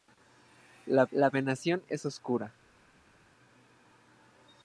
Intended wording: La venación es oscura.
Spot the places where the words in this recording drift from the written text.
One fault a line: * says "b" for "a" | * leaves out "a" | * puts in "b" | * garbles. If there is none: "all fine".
* puts in "la"